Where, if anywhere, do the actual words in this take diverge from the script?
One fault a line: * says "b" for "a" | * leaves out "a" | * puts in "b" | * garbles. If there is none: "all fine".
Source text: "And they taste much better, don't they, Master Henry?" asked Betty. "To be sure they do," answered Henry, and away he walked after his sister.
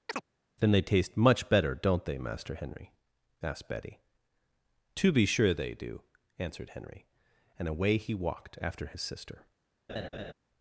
* says "Then" for "And"